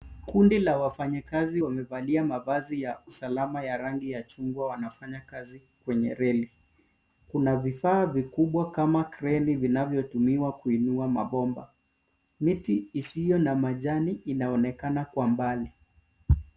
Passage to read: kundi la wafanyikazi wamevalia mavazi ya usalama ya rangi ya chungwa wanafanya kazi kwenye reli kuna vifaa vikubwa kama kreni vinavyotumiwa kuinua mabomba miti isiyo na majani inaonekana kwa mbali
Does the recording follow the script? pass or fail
pass